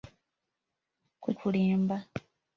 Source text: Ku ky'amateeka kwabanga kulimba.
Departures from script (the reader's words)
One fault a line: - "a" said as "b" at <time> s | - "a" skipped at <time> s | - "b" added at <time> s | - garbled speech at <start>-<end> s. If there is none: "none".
- "ky'amateeka kwabanga" skipped at 1.3 s